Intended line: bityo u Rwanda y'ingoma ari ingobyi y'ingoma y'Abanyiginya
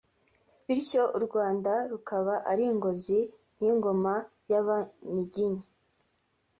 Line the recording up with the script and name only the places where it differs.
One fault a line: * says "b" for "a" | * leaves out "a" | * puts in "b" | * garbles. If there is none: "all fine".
* says "rukaba" for "y'ingoma"